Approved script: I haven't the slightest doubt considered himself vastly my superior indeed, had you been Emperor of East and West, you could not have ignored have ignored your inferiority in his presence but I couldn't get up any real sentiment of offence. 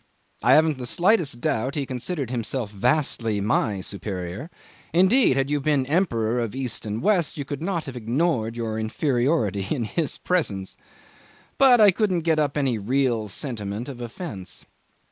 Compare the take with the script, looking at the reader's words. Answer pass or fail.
fail